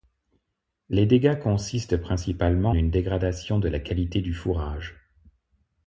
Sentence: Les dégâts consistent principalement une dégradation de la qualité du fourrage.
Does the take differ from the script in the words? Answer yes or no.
no